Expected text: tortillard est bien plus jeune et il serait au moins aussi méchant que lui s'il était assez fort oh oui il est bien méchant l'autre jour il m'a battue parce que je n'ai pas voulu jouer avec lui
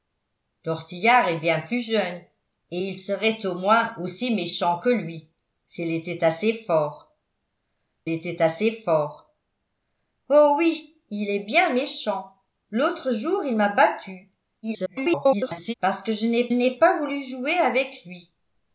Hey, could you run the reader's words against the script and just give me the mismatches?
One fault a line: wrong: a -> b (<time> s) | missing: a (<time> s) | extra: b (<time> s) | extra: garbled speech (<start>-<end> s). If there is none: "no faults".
extra: était assez fort (8.1 s)
extra: garbled speech (14.6-15.7 s)
extra: n'ai (16.5 s)